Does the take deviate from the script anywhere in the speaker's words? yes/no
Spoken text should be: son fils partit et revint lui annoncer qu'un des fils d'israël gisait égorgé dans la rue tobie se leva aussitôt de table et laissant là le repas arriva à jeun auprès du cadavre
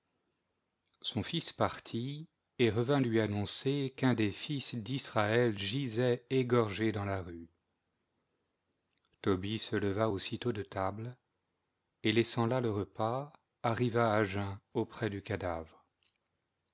no